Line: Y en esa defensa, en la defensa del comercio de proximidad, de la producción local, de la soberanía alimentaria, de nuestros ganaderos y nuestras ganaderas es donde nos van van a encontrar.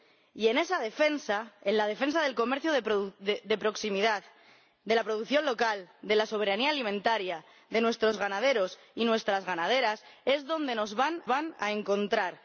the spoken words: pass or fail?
pass